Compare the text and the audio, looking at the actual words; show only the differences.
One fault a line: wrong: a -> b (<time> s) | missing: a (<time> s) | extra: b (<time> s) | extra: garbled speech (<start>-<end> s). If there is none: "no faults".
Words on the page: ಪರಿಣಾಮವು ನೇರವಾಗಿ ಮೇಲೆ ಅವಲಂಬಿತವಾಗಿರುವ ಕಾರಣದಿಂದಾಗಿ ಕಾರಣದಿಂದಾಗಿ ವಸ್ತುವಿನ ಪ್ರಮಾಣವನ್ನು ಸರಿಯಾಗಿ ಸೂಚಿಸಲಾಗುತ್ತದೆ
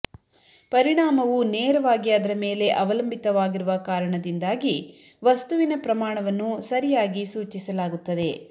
extra: ಅದರ (2.1 s)
missing: ಕಾರಣದಿಂದಾಗಿ (4.8 s)